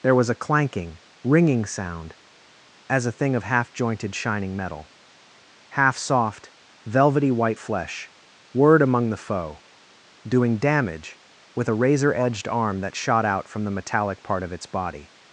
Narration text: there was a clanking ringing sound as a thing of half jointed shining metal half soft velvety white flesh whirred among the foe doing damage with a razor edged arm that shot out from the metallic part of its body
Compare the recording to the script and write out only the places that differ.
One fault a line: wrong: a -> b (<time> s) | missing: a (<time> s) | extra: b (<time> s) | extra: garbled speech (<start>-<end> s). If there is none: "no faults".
no faults